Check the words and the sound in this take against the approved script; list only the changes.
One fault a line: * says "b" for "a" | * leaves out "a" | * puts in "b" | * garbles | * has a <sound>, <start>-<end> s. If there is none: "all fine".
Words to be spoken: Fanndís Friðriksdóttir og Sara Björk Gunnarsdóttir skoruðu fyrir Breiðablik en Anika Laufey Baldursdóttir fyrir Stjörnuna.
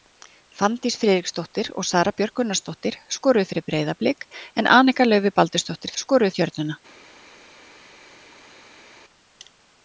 * says "skoruðu" for "fyrir"